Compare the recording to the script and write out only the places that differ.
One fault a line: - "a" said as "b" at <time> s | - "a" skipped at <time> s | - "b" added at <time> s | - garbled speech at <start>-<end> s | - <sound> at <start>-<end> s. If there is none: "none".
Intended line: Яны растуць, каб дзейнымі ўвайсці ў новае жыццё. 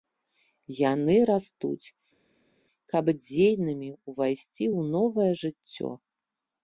none